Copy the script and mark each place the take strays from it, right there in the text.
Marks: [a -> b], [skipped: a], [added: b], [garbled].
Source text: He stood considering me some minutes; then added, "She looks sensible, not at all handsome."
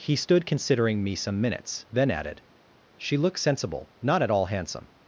He stood considering me some minutes; then added, "She looks sensible, not at all handsome."